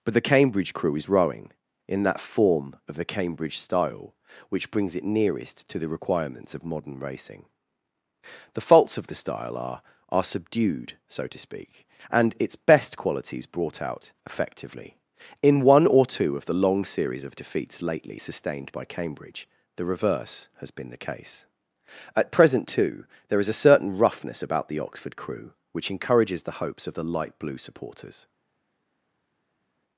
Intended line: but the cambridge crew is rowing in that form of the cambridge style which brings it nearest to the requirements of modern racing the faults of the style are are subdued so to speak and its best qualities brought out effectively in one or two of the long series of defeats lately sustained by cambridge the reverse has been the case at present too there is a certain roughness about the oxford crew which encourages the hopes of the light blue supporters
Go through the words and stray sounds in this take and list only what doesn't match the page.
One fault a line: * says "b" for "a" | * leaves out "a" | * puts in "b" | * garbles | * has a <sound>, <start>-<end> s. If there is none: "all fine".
all fine